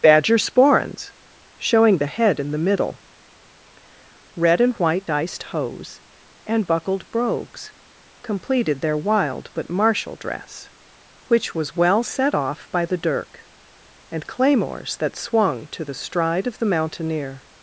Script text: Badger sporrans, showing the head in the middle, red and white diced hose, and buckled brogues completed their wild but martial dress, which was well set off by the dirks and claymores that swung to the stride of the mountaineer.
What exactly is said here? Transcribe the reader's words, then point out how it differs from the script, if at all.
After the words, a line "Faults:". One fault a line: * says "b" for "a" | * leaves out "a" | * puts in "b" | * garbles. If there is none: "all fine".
Badger sporrans, showing the head in the middle, red and white diced hose, and buckled brogues completed their wild but martial dress, which was well set off by the dirk and claymores that swung to the stride of the mountaineer.
Faults:
* says "dirk" for "dirks"